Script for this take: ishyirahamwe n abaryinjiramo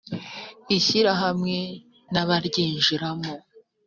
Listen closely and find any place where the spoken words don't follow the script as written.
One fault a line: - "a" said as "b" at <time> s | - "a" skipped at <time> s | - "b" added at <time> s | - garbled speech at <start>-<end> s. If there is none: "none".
none